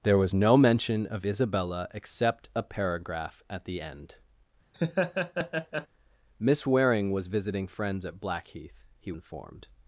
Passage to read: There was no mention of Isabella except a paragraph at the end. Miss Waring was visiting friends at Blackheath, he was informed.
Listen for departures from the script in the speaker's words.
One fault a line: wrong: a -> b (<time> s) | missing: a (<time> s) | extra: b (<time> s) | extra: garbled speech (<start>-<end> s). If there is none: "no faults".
missing: was (9.1 s)